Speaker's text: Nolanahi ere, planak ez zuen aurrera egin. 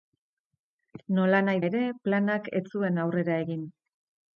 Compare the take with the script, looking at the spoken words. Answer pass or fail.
pass